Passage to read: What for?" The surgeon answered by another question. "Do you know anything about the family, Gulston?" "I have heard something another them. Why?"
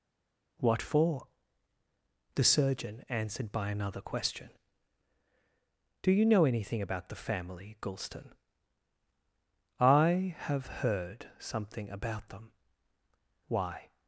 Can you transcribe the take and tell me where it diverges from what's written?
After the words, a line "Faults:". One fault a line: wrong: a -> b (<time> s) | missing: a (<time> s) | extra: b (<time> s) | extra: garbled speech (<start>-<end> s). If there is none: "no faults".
What for?" The surgeon answered by another question. "Do you know anything about the family, Gulston?" "I have heard something about them. Why?"
Faults:
wrong: another -> about (11.9 s)